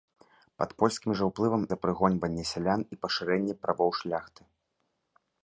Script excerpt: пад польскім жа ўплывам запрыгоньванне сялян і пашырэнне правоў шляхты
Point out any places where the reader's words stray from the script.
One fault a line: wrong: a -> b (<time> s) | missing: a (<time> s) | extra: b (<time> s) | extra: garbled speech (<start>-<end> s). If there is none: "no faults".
no faults